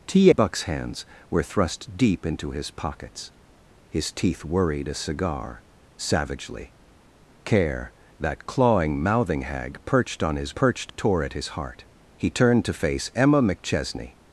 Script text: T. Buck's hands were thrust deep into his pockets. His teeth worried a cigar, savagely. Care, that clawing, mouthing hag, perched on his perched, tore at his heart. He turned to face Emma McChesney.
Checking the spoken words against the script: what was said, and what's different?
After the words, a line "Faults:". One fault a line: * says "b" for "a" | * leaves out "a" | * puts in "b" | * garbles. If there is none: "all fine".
T. Buck's hands were thrust deep into his pockets. His teeth worried a cigar, savagely. Care, that clawing, mouthing hag, perched on his perched, tore at his heart. He turned to face Emma McChesney.
Faults:
all fine